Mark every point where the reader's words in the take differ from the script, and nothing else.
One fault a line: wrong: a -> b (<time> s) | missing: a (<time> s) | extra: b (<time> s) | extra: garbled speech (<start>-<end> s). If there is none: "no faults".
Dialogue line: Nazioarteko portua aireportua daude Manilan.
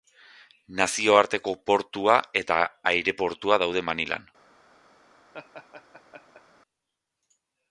extra: eta (2.4 s)